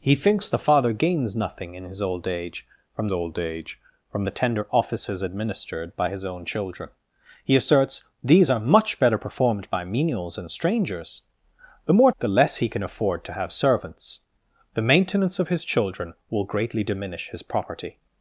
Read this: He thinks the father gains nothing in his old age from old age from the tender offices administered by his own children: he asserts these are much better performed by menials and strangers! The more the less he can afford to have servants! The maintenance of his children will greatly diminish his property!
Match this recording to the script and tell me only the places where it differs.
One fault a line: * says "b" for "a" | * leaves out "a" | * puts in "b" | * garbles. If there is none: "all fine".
all fine